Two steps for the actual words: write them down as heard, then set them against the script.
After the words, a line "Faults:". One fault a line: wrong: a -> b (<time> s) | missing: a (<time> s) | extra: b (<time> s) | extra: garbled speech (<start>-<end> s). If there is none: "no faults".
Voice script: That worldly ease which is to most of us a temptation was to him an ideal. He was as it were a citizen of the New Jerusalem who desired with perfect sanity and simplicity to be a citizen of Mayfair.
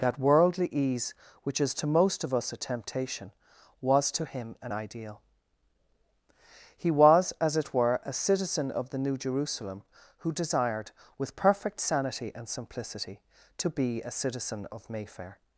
That worldly ease which is to most of us a temptation was to him an ideal. He was as it were a citizen of the New Jerusalem who desired with perfect sanity and simplicity to be a citizen of Mayfair.
Faults:
no faults